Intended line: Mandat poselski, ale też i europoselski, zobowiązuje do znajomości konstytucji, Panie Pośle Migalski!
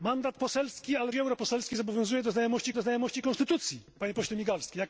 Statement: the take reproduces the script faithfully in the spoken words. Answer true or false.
false